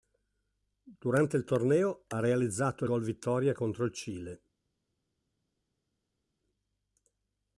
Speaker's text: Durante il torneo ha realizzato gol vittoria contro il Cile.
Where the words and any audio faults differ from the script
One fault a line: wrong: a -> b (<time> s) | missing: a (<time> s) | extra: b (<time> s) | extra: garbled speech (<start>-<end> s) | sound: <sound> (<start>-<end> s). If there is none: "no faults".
no faults